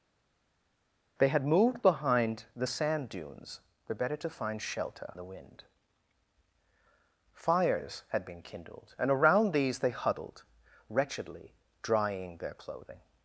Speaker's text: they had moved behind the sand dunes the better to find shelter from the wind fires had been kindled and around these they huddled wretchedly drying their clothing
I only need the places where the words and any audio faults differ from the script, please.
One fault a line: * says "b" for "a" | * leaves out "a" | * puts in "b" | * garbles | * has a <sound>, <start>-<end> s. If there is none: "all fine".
* leaves out "from"